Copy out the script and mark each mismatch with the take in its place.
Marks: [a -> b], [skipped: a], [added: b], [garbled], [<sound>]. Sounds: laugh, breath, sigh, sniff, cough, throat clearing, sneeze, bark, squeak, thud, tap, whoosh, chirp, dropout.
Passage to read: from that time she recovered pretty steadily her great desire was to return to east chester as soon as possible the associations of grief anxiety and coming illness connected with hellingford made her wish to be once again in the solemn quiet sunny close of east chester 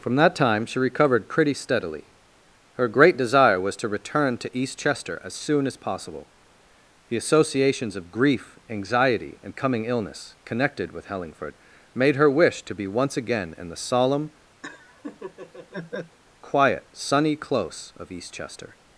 from that time she recovered pretty steadily her great desire was to return to east chester as soon as possible the associations of grief anxiety and coming illness connected with hellingford made her wish to be once again in the solemn [laugh] quiet sunny close of east chester